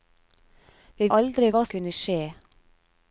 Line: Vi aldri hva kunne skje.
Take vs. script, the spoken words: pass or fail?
pass